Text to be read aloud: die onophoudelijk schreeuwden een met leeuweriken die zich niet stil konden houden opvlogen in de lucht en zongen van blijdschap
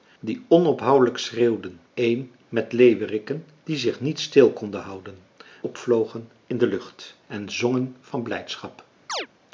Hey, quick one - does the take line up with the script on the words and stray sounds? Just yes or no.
no